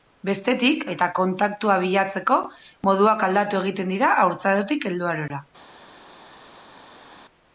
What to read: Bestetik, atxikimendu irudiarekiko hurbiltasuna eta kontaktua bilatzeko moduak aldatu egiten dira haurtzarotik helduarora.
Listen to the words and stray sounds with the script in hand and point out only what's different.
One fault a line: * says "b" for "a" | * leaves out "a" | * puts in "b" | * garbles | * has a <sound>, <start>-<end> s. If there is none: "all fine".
* leaves out "atxikimendu irudiarekiko hurbiltasuna"